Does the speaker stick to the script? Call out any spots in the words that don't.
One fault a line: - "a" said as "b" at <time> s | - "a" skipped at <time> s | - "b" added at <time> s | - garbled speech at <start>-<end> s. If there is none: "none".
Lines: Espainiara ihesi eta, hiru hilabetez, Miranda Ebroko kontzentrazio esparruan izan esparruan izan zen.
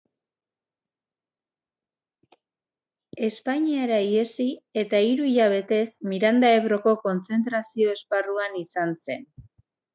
- "esparruan izan" skipped at 9.0 s